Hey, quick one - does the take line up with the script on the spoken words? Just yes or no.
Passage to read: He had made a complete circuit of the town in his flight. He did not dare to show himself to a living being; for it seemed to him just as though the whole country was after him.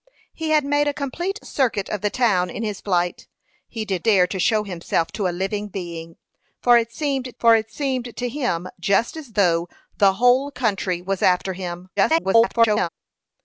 no